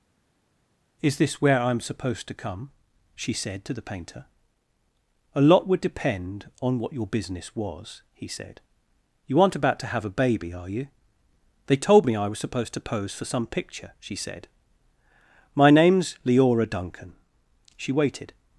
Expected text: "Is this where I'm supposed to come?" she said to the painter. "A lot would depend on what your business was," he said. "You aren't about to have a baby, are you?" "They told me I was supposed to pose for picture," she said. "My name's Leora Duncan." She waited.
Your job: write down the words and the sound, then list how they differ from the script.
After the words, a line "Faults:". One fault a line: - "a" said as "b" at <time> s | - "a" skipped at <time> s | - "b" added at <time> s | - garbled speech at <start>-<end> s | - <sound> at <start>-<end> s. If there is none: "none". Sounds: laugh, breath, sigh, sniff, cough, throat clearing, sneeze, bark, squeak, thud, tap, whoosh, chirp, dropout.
"Is this where I'm supposed to come?" she said to the painter. "A lot would depend on what your business was," he said. "You aren't about to have a baby, are you?" "They told me I was supposed to pose for some picture," she said. "My name's Leora Duncan." She waited.
Faults:
- "some" added at 13.2 s